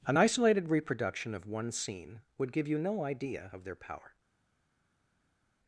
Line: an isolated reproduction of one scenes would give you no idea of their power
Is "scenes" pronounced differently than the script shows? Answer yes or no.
yes